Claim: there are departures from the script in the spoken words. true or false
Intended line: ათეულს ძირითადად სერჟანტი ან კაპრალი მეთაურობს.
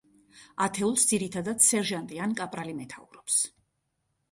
false